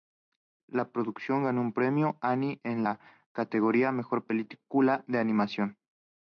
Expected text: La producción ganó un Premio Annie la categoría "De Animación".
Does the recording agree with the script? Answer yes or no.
no